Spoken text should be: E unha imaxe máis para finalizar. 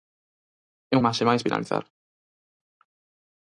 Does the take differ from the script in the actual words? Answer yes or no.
yes